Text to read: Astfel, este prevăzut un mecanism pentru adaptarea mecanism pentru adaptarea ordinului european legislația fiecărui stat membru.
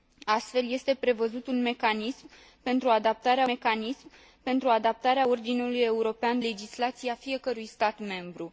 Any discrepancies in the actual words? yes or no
no